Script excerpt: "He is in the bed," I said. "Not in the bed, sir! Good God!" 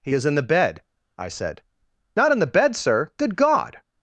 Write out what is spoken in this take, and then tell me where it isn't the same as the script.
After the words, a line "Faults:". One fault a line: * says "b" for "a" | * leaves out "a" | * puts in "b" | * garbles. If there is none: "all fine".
"He is in the bed," I said. "Not in the bed, sir! Good God!"
Faults:
all fine